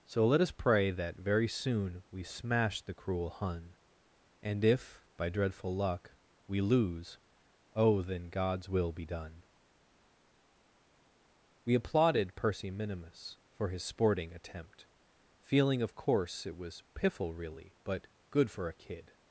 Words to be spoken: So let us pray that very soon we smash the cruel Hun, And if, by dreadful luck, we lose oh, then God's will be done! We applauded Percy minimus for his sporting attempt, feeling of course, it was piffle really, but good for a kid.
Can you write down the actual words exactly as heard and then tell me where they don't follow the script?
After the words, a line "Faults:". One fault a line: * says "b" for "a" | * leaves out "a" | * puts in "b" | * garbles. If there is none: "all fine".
So let us pray that very soon we smash the cruel Hun, And if, by dreadful luck, we lose oh, then God's will be done! We applauded Percy minimus for his sporting attempt, feeling of course, it was piffle really, but good for a kid.
Faults:
all fine